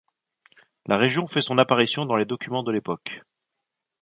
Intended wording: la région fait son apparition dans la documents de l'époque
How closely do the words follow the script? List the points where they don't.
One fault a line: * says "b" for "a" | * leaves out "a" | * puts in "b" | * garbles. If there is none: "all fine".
* says "les" for "la"